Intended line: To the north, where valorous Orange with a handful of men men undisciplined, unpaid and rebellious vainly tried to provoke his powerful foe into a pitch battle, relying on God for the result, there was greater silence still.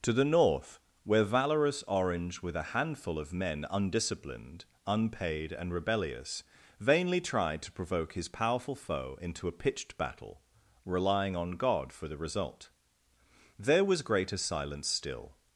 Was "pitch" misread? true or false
true